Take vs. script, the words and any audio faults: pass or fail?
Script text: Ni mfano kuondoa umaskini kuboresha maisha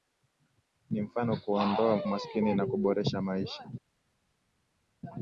fail